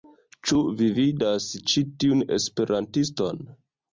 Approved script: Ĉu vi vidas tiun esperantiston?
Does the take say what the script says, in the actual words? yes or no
no